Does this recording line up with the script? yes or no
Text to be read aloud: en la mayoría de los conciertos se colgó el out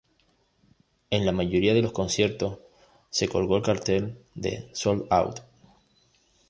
no